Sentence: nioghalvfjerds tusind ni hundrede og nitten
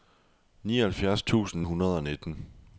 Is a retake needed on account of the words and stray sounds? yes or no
yes